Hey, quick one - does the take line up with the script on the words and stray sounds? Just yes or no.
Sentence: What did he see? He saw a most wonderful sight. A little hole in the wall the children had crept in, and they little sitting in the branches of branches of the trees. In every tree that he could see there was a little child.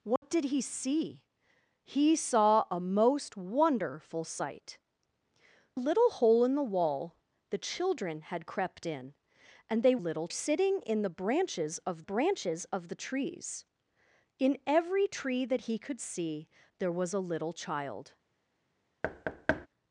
no